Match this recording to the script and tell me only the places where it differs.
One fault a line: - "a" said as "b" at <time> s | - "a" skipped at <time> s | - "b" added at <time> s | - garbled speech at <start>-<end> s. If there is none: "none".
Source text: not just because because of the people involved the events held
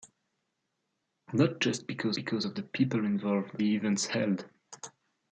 none